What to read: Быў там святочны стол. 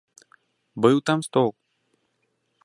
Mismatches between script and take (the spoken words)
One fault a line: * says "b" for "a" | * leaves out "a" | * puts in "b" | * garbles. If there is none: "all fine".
* leaves out "святочны"